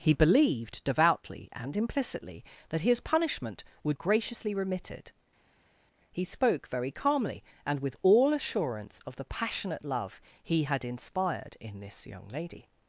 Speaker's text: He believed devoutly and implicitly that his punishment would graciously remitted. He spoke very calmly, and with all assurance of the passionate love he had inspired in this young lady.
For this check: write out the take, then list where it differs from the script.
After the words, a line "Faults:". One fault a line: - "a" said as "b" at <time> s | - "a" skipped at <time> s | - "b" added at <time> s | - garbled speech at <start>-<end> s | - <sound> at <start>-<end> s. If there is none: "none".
He believed devoutly and implicitly that his punishment would graciously remitted. He spoke very calmly, and with all assurance of the passionate love he had inspired in this young lady.
Faults:
none